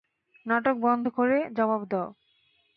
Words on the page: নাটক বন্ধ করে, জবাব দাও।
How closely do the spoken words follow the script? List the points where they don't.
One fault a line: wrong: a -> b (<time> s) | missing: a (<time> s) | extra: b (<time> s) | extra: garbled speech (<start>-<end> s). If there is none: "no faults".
no faults